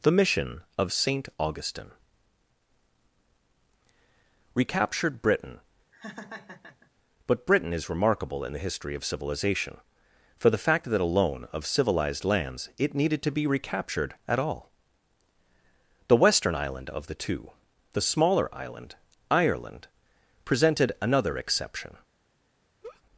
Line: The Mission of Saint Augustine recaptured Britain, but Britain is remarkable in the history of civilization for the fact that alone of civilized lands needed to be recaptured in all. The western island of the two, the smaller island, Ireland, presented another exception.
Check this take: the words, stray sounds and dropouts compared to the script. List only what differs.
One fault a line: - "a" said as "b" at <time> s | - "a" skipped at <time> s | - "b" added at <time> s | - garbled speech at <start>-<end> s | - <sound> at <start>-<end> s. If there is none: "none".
- laugh at 5.9-6.9 s
- "it" added at 12.8 s
- "in" said as "at" at 14.3 s
- laugh at 22.8-23.0 s